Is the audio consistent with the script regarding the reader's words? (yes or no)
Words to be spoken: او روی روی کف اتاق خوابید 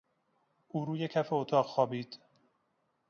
no